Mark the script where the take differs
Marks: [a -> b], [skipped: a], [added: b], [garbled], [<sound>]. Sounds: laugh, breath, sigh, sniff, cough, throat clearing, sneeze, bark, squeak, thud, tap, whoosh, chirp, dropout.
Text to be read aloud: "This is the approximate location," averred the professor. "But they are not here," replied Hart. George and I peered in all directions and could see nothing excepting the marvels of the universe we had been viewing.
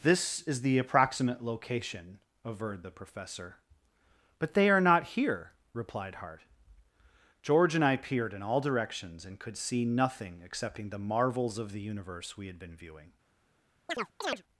"This is the approximate location," averred the professor. "But they are not here," replied Hart. George and I peered in all directions and could see nothing excepting the marvels of the universe we had been viewing. [chirp]